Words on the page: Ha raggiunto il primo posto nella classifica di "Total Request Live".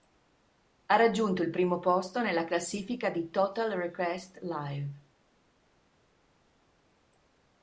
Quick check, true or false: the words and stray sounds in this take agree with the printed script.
true